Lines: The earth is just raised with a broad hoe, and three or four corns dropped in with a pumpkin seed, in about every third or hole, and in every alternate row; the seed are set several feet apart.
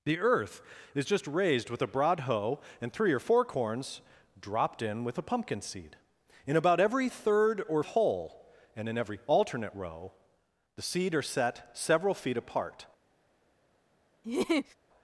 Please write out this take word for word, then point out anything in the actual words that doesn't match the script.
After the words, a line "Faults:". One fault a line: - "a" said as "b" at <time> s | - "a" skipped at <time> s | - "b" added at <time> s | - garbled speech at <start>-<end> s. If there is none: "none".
The earth is just raised with a broad hoe, and three or four corns dropped in with a pumpkin seed, in about every third or hole, and in every alternate row; the seed are set several feet apart.
Faults:
none